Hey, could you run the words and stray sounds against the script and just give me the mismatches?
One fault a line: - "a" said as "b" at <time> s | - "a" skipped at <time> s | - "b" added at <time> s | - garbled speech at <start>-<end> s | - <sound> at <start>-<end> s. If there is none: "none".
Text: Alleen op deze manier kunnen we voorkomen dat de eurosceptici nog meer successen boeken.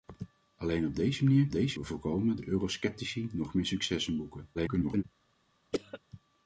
- "kunnen" said as "deze" at 1.5 s
- "dat" skipped at 2.4 s
- garbled speech at 4.5-5.0 s
- cough at 5.7-6.0 s